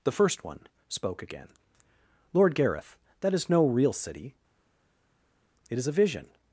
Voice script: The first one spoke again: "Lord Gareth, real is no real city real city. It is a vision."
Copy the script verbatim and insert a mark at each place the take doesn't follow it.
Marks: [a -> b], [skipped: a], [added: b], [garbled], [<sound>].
The first one spoke again: "Lord Gareth, [real -> that] is no real city [skipped: real city.] It is a vision."